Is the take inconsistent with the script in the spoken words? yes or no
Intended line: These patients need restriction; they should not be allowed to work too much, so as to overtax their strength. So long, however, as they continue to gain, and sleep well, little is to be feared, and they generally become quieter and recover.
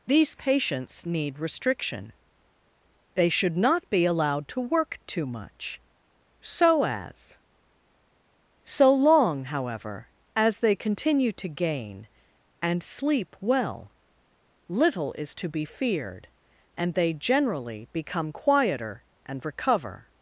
yes